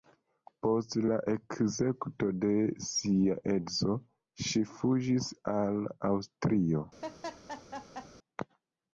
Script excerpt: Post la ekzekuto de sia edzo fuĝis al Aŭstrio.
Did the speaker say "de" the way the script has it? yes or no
yes